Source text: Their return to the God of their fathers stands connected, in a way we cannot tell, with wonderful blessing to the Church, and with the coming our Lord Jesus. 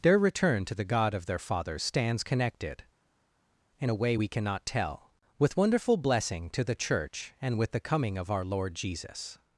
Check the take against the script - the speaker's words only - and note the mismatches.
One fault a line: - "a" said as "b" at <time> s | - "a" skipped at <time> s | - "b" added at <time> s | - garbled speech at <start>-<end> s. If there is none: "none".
- "of" added at 8.2 s